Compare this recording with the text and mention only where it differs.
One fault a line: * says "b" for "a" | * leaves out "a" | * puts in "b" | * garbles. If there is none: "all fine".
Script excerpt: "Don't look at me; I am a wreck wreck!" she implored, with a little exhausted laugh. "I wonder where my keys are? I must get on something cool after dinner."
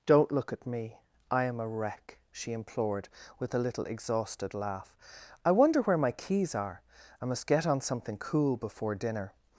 * leaves out "wreck"
* says "before" for "after"